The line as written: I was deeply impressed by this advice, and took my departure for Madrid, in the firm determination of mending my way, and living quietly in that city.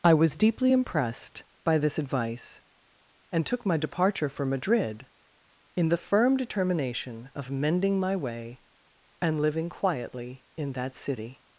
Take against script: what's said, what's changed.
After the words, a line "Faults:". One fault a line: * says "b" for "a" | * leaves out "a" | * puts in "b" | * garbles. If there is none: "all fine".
I was deeply impressed by this advice, and took my departure for Madrid, in the firm determination of mending my way, and living quietly in that city.
Faults:
all fine